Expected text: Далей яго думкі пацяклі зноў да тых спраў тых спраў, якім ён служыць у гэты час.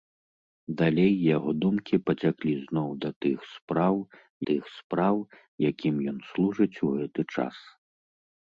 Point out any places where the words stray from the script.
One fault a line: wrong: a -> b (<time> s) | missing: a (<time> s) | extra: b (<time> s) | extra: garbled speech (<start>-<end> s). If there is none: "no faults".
no faults